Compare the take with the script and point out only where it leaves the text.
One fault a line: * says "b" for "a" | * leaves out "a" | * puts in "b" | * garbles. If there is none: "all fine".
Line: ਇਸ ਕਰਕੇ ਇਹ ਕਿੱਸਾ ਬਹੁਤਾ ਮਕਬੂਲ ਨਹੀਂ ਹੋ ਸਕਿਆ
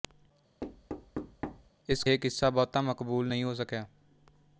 * leaves out "ਕਰਕੇ"